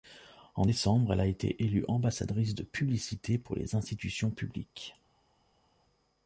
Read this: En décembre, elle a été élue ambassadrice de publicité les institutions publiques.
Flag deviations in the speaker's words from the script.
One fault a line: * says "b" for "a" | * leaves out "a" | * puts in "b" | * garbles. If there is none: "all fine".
* puts in "pour"